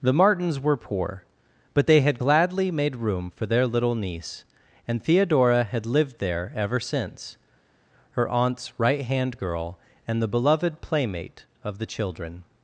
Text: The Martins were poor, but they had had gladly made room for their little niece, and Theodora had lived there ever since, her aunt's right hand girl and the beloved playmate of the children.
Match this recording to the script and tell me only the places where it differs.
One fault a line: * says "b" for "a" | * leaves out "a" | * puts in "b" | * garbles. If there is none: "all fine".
* leaves out "had"